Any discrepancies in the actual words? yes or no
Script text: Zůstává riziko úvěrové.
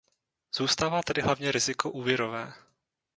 yes